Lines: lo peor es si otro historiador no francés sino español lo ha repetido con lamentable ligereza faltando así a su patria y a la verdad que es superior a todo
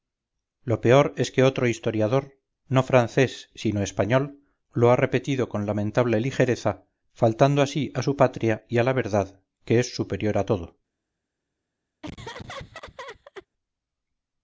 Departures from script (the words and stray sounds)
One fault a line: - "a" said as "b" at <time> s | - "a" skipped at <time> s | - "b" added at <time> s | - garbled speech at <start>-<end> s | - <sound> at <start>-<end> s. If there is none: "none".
- "si" said as "que" at 1.3 s
- laugh at 12.0-13.5 s